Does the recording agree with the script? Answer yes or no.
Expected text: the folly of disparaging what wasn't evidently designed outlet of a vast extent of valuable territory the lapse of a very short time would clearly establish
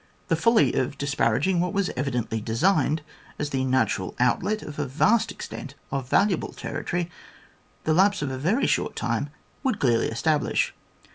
no